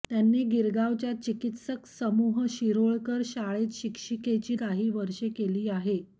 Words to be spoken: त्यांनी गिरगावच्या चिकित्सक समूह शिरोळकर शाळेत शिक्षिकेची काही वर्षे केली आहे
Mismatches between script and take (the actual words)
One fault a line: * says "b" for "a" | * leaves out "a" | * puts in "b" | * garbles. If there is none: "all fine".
all fine